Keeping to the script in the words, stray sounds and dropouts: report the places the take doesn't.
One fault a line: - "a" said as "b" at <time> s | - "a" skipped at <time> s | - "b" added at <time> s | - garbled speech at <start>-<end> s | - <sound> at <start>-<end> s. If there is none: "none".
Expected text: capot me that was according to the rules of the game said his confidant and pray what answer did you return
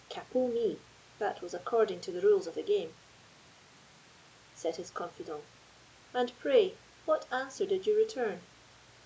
none